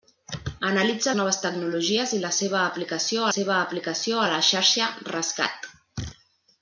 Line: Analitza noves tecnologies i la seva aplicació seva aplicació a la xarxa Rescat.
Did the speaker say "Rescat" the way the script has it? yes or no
yes